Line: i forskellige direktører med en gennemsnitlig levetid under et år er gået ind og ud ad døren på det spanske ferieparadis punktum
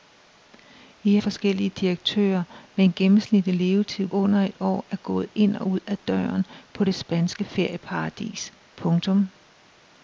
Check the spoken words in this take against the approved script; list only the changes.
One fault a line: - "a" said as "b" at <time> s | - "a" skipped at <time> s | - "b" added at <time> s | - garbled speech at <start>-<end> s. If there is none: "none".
none